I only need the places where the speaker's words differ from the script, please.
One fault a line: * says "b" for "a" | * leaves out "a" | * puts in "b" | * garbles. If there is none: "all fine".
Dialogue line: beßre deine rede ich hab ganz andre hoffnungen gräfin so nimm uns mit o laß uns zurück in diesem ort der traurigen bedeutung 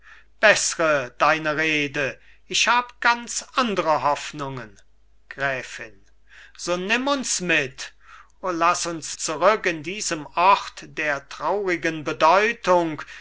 all fine